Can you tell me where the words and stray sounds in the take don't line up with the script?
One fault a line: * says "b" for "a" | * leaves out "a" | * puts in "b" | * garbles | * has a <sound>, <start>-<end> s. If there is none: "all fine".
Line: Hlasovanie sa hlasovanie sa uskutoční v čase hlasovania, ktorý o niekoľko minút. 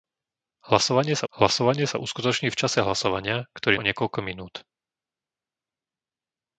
all fine